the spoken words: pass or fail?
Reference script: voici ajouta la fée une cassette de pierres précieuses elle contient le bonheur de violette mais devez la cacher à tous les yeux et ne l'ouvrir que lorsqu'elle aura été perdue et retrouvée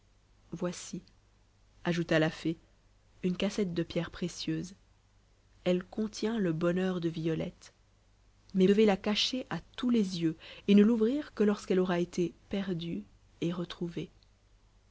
pass